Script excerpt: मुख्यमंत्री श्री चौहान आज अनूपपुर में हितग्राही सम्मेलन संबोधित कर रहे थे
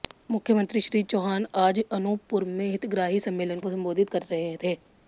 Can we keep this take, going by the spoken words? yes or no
yes